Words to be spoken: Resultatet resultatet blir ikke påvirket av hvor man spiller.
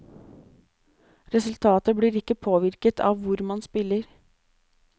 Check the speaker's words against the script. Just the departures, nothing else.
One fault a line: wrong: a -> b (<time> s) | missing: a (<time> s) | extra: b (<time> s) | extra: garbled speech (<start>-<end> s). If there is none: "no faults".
missing: resultatet (1.9 s)